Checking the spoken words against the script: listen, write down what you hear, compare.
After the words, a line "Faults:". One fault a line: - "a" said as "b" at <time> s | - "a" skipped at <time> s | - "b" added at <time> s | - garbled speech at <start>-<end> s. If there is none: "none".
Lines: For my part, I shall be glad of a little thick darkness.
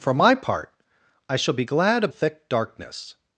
For my part, I shall be glad of thick darkness.
Faults:
- "a little" skipped at 2.1 s